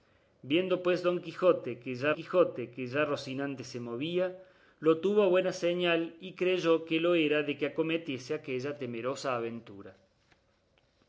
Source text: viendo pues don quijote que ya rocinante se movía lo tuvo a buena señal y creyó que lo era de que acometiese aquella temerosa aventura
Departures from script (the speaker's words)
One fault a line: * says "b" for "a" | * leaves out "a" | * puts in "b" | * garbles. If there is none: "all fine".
* puts in "quijote que ya"